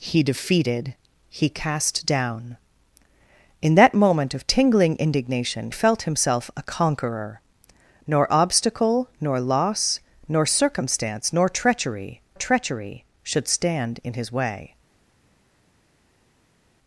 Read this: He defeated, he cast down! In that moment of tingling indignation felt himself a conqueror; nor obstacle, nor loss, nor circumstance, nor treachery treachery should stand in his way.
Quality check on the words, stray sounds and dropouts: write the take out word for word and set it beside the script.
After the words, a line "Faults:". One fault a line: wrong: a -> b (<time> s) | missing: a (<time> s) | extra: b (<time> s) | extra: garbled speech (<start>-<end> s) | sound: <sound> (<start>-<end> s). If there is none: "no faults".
He defeated, he cast down! In that moment of tingling indignation felt himself a conqueror; nor obstacle, nor loss, nor circumstance, nor treachery treachery should stand in his way.
Faults:
no faults